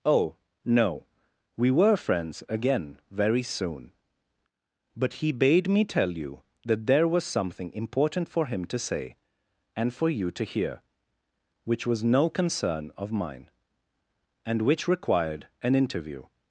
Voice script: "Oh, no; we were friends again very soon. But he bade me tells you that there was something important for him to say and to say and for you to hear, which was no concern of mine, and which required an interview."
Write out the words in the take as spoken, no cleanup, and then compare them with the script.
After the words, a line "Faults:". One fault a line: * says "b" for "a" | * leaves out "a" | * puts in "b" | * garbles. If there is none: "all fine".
"Oh, no; we were friends again very soon. But he bade me tell you that there was something important for him to say and for you to hear, which was no concern of mine, and which required an interview."
Faults:
* says "tell" for "tells"
* leaves out "to say and"